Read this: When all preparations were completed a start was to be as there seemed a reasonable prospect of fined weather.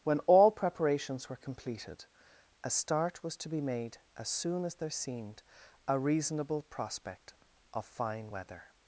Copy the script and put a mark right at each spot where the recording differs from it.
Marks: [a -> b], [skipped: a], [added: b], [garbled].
When all preparations were completed a start was to be [added: made] as [added: soon as] there seemed a reasonable prospect of [fined -> fine] weather.